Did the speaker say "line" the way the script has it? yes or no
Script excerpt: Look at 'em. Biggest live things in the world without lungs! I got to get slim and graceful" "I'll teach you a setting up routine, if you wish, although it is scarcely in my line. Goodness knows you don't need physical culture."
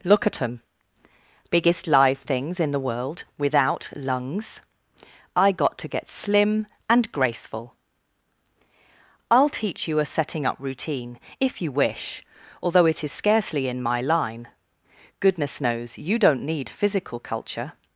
yes